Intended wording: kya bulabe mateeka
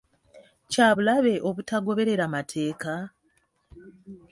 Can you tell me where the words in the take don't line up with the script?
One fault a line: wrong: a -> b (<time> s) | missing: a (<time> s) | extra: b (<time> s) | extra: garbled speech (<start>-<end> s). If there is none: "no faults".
extra: obutagoberera (1.5 s)